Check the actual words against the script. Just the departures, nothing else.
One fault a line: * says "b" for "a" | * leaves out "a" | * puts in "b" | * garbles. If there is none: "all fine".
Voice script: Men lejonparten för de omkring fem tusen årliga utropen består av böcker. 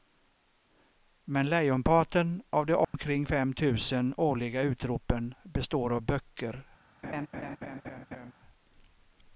* says "av" for "för"